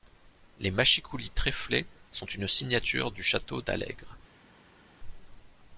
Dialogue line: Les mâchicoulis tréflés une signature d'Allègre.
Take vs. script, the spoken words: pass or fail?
fail